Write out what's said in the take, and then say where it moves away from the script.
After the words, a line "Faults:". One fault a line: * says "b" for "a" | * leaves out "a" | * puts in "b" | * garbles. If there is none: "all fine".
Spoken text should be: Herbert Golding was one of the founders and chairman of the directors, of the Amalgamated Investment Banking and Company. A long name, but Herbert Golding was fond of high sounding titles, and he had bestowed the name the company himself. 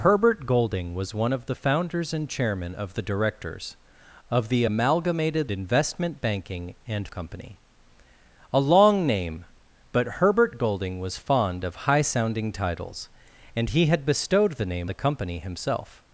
Herbert Golding was one of the founders and chairman of the directors, of the Amalgamated Investment Banking and Company. A long name, but Herbert Golding was fond of high sounding titles, and he had bestowed the name the company himself.
Faults:
all fine